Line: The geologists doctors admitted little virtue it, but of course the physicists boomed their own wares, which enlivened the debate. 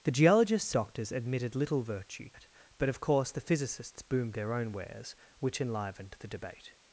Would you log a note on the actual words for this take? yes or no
no